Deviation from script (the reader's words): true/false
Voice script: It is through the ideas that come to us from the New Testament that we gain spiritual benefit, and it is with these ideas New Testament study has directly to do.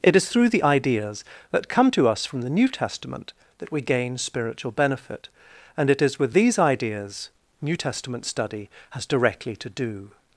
false